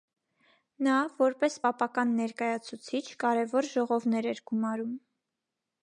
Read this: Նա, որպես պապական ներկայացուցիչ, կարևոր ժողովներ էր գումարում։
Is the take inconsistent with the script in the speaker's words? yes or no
no